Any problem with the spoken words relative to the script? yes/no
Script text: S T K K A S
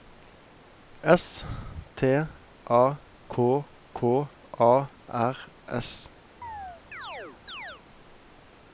yes